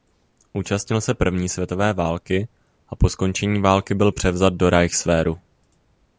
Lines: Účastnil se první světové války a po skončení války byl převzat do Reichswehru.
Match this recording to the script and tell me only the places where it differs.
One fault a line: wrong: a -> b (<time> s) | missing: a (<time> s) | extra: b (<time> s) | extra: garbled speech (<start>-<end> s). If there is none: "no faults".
no faults